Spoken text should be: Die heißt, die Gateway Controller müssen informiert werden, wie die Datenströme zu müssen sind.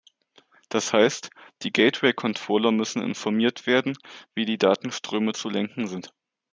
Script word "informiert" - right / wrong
right